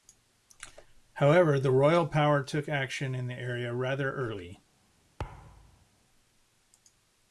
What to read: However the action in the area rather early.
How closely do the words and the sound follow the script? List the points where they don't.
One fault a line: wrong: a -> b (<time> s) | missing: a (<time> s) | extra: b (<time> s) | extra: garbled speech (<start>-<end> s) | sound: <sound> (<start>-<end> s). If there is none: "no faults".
extra: royal power took (1.7 s)
sound: thud (5.2-5.9 s)